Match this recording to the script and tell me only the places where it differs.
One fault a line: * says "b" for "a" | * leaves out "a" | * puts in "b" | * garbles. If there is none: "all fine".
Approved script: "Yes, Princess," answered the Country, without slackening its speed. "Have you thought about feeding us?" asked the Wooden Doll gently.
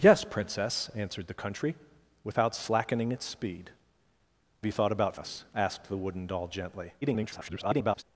* leaves out "Have"
* leaves out "feeding"
* garbles